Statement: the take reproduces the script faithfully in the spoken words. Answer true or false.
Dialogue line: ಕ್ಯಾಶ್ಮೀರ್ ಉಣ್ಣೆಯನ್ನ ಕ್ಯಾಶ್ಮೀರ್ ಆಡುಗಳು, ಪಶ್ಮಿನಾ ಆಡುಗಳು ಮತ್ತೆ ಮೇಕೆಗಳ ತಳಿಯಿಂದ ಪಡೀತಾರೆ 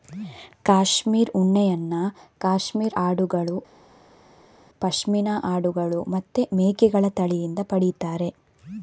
true